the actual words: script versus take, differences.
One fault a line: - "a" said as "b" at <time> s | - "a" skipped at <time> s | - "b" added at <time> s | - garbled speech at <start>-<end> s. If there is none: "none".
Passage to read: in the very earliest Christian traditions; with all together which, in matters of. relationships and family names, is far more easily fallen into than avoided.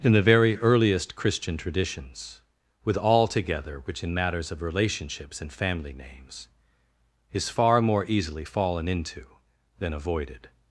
none